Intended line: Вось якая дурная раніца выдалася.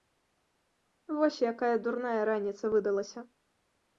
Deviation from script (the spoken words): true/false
false